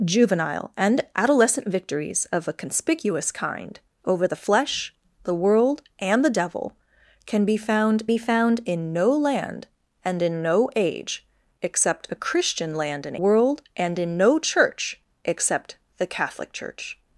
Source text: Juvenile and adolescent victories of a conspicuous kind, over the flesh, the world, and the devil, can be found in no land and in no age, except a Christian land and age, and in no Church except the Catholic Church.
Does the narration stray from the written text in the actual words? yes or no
yes